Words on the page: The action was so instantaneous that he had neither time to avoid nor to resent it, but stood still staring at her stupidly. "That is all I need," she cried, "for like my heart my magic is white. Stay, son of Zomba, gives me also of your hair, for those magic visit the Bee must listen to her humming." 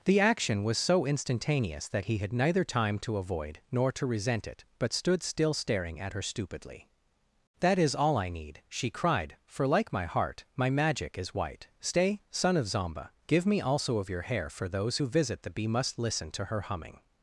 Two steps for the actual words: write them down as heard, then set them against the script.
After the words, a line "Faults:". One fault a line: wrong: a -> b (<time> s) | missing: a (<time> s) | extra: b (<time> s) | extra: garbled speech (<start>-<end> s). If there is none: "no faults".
The action was so instantaneous that he had neither time to avoid nor to resent it, but stood still staring at her stupidly. "That is all I need," she cried, "for like my heart my magic is white. Stay, son of Zomba, give me also of your hair, for those who visit the Bee must listen to her humming."
Faults:
wrong: gives -> give (13.3 s)
wrong: magic -> who (14.9 s)